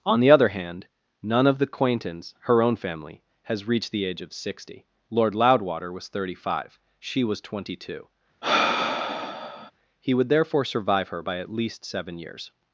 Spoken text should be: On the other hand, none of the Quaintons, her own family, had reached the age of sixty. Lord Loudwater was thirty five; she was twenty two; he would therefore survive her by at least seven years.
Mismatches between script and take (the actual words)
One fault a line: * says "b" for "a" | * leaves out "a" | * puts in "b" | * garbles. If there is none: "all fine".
* says "has" for "had"